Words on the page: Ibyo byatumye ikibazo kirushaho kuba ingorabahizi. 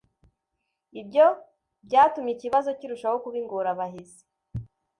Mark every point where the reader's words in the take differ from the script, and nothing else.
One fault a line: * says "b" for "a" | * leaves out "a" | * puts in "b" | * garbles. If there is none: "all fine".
all fine